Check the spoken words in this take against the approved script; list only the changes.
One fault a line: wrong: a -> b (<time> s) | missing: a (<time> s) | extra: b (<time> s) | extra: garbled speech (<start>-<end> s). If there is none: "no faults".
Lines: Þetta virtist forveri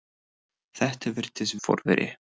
no faults